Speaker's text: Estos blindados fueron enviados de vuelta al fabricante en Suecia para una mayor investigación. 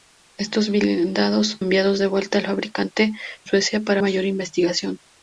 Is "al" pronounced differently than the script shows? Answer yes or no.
no